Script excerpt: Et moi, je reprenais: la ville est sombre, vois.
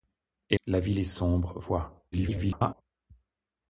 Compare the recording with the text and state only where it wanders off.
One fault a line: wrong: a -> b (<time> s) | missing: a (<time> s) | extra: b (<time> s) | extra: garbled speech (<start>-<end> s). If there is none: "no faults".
missing: moi je reprenais (0.6 s)
extra: garbled speech (2.1-2.8 s)